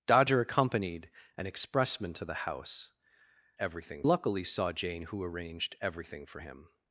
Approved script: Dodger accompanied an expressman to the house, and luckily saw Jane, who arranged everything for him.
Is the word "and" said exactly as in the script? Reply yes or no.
no